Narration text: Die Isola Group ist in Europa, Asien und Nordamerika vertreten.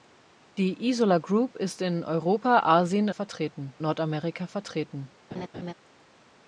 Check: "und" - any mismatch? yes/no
yes